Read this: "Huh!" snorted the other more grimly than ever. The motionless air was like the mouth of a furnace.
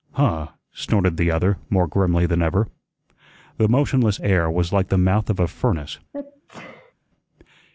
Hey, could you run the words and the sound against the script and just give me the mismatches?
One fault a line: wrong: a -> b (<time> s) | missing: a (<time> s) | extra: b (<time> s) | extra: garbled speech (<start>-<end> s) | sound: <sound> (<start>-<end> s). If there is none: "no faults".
sound: sneeze (6.1-6.9 s)